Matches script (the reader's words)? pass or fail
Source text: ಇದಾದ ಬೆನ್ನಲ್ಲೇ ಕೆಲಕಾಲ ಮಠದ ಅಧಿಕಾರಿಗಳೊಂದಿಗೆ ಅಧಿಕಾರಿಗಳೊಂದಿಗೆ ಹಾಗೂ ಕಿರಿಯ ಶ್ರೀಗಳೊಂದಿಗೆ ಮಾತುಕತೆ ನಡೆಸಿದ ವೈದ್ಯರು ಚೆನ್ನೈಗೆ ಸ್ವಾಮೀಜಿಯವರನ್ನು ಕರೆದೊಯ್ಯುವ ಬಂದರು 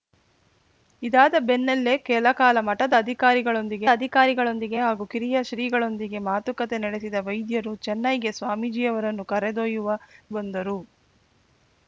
pass